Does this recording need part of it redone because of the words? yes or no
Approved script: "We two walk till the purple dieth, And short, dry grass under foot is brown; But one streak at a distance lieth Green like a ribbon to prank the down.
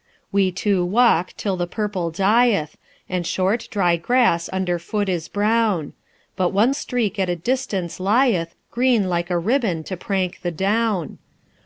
no